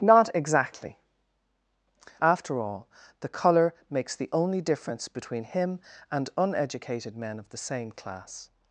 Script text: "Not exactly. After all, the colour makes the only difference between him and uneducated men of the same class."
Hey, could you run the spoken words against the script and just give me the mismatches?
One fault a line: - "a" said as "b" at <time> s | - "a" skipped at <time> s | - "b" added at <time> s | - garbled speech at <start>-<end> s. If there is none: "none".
none